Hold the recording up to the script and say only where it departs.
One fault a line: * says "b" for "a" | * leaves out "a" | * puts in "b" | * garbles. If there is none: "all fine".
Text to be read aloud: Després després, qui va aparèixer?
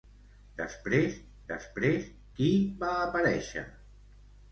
all fine